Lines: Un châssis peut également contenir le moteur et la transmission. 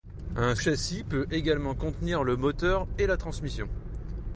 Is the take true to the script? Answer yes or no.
yes